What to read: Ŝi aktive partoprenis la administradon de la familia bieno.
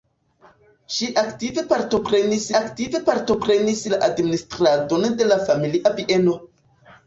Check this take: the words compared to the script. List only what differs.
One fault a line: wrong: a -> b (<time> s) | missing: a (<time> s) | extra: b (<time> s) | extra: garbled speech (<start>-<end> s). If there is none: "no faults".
extra: aktive partoprenis (2.6 s)